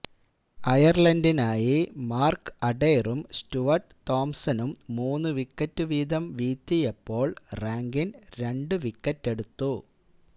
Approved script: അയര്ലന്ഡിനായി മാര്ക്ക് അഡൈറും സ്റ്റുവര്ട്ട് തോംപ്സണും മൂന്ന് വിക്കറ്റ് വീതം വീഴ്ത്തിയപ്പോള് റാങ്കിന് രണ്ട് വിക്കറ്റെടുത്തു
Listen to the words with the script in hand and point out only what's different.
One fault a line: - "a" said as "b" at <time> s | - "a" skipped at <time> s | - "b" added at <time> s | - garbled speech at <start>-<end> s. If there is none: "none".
none